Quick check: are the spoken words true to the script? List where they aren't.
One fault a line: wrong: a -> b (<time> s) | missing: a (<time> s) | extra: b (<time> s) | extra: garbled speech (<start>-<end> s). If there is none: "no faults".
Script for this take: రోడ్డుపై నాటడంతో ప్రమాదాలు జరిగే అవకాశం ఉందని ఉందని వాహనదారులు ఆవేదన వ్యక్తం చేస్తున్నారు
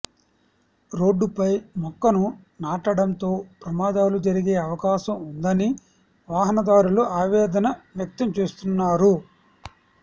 extra: మొక్కను (1.8 s)
missing: ఉందని (5.7 s)